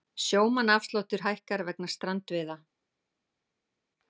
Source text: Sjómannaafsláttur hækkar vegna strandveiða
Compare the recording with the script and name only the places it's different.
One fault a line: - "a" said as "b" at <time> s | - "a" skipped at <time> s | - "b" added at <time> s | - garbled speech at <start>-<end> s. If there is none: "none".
none